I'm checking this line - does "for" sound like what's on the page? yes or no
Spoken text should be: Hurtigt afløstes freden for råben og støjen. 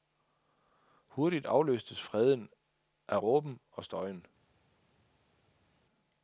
no